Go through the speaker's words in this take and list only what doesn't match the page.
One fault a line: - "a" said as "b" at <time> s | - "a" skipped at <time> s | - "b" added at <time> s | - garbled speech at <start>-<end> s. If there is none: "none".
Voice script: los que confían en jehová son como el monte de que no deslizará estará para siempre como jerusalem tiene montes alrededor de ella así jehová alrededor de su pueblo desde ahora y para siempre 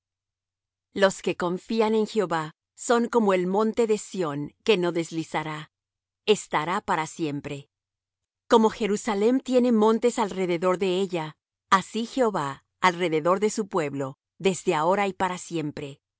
- "sión" added at 4.0 s